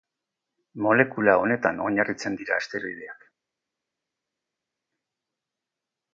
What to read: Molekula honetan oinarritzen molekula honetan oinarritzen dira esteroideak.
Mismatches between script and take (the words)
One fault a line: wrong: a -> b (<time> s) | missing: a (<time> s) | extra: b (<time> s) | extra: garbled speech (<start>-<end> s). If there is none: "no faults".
missing: molekula honetan oinarritzen (2.4 s)